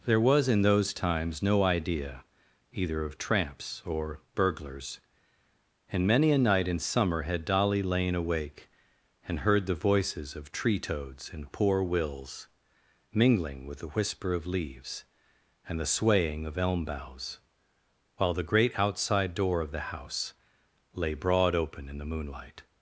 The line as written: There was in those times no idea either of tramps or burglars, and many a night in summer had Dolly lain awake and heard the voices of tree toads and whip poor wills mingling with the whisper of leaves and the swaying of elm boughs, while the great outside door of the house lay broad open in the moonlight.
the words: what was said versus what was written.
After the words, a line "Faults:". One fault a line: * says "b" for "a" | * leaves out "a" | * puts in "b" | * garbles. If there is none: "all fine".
There was in those times no idea either of tramps or burglars, and many a night in summer had Dolly lain awake and heard the voices of tree toads and poor wills mingling with the whisper of leaves and the swaying of elm boughs, while the great outside door of the house lay broad open in the moonlight.
Faults:
* leaves out "whip"